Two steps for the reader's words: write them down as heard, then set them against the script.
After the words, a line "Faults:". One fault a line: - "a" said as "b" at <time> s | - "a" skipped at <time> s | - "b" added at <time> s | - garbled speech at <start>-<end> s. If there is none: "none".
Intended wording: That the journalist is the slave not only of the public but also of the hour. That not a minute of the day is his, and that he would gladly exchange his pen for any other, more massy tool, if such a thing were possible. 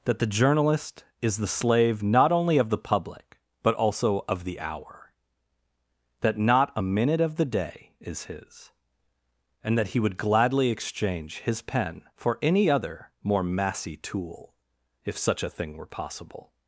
That the journalist is the slave not only of the public but also of the hour. That not a minute of the day is his, and that he would gladly exchange his pen for any other, more massy tool, if such a thing were possible.
Faults:
none